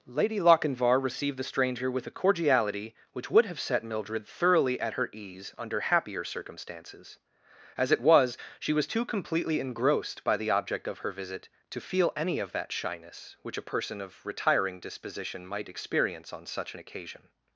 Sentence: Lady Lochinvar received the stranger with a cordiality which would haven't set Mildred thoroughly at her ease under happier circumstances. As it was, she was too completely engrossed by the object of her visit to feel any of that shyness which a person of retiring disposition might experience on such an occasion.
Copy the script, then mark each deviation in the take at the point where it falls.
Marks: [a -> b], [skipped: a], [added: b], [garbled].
Lady Lochinvar received the stranger with a cordiality which would [haven't -> have] set Mildred thoroughly at her ease under happier circumstances. As it was, she was too completely engrossed by the object of her visit to feel any of that shyness which a person of retiring disposition might experience on such an occasion.